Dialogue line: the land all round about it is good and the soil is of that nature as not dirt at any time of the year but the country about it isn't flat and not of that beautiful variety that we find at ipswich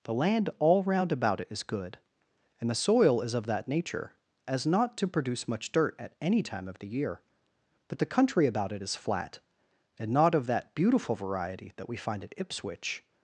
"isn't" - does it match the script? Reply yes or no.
no